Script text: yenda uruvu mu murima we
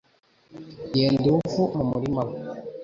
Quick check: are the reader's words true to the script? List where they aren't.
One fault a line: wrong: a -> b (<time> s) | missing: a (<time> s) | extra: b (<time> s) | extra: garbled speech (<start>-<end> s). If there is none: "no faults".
no faults